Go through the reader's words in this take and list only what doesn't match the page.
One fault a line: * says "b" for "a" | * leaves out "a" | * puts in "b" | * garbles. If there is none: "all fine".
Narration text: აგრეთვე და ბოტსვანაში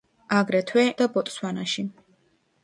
all fine